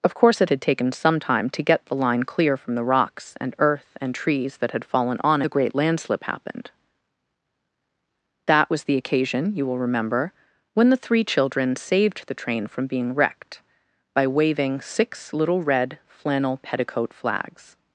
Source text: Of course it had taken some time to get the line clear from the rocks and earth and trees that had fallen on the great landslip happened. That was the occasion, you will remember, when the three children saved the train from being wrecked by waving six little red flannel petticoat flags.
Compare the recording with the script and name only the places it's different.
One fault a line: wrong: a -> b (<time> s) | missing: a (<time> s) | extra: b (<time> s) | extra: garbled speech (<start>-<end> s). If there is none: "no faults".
no faults